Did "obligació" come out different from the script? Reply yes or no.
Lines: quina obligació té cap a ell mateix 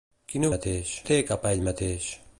yes